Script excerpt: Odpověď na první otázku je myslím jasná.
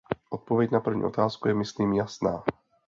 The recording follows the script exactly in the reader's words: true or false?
true